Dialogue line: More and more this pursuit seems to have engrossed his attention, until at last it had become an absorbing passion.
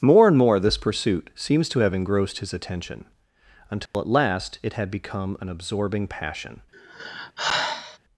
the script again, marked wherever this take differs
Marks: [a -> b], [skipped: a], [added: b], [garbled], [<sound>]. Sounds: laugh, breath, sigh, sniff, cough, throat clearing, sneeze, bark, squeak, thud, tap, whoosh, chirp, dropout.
More and more this pursuit seems to have engrossed his attention, until [dropout] at last it had become an absorbing passion. [sigh]